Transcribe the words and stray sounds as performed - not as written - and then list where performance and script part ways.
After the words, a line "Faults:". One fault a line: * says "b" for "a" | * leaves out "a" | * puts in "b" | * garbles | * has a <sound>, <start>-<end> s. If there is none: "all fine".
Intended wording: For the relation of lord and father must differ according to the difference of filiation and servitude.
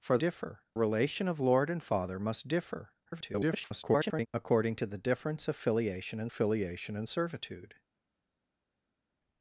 For differ relation of lord and father must differ [garbled] according to the difference of filiation and filiation and servitude.
Faults:
* says "differ" for "the"
* garbles
* puts in "filiation and"